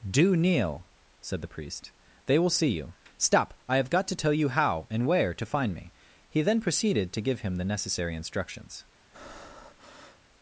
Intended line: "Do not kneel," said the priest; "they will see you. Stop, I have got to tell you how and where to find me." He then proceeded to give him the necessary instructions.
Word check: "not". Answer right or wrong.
wrong